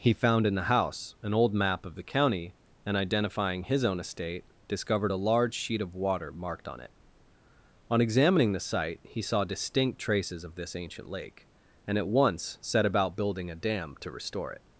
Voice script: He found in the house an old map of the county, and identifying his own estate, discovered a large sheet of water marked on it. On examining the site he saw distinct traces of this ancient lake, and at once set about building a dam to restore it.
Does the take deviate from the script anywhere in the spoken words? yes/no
no